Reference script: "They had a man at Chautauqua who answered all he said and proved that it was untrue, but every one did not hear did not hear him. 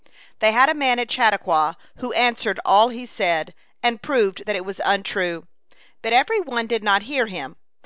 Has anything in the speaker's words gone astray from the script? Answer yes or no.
yes